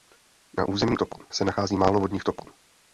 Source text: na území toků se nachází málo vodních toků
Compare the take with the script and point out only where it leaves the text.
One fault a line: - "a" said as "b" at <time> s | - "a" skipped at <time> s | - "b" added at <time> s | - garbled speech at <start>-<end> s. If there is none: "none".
none